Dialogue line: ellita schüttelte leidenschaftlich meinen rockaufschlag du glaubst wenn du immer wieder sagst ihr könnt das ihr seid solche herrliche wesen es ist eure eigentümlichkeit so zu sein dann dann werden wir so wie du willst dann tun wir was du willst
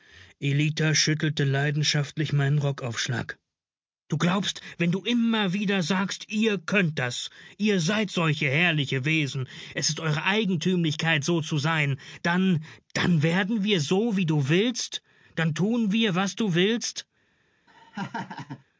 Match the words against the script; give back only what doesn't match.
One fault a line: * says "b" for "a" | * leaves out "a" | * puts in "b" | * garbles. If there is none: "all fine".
all fine